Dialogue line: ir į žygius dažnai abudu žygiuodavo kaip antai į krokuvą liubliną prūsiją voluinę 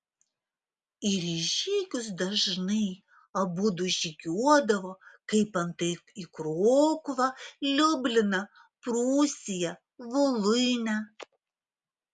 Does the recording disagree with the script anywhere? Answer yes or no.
no